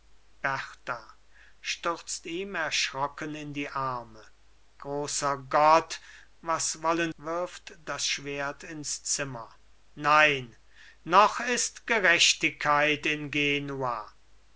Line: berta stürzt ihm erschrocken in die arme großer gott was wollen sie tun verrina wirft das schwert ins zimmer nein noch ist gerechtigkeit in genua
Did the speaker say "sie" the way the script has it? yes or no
no